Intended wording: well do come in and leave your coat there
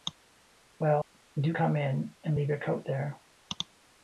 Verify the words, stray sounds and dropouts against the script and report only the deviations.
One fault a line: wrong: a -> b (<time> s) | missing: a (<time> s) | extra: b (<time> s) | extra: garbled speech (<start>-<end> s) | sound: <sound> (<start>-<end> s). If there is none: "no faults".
sound: dropout (1.0-1.1 s)